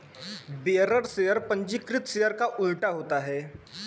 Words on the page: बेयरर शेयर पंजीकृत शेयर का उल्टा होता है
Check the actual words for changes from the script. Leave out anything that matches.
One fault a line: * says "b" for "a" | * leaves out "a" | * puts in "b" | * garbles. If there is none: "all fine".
all fine